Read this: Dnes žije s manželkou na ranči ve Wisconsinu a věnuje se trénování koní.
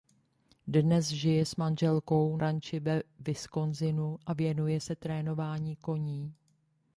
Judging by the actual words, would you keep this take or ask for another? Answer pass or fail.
fail